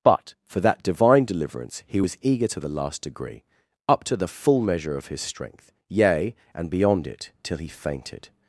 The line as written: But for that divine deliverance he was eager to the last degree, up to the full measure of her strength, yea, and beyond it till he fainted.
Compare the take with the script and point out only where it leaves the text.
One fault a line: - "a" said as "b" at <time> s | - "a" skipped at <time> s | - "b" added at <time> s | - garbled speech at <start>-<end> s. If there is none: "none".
- "her" said as "his" at 5.1 s